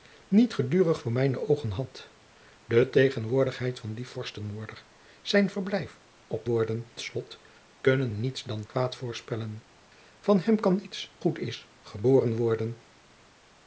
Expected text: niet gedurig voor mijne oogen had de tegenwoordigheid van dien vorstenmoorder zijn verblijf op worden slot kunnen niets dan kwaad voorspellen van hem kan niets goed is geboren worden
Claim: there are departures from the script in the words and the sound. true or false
false